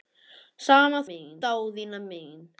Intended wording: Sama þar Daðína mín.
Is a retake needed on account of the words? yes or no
yes